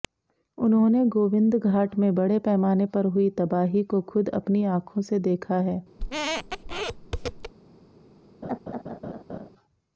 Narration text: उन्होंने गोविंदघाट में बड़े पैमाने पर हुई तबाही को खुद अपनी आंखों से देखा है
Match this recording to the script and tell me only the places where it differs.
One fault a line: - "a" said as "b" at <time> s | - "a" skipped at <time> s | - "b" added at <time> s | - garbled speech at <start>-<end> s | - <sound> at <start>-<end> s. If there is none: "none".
- squeak at 6.0-7.5 s
- laugh at 8.4-9.5 s